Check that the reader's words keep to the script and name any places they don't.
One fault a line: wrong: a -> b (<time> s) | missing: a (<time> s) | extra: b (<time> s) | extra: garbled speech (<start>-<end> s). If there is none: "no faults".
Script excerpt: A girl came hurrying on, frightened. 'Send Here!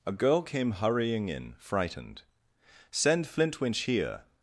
wrong: on -> in (1.3 s)
extra: Flintwinch (3.3 s)